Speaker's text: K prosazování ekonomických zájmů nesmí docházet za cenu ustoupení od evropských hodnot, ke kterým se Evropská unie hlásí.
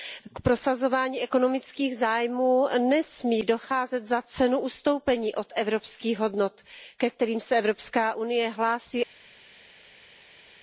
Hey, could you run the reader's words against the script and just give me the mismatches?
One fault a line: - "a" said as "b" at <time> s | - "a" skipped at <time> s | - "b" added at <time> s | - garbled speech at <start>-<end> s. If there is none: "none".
none